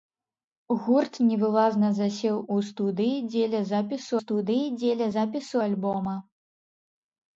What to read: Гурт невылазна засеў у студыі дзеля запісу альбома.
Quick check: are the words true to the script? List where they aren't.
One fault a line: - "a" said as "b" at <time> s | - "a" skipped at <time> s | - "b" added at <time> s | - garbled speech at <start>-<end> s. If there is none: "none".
- "студыі дзеля запісу" added at 4.2 s